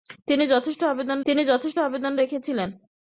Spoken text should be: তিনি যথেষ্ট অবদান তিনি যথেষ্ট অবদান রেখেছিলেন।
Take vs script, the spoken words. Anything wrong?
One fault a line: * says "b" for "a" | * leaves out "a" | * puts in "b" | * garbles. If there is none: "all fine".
all fine